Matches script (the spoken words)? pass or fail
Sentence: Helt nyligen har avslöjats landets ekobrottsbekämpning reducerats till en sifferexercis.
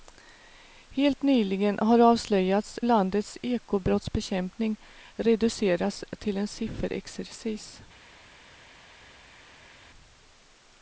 pass